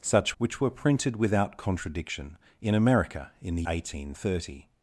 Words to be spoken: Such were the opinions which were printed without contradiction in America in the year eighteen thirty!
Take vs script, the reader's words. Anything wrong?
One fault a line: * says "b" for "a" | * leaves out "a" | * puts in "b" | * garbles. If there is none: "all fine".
* leaves out "were the opinions"
* leaves out "year"